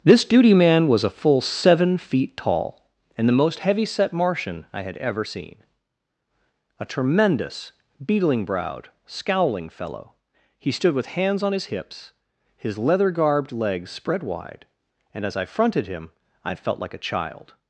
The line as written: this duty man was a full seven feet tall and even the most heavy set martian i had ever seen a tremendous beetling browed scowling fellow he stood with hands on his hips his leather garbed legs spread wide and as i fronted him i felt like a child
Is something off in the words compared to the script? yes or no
yes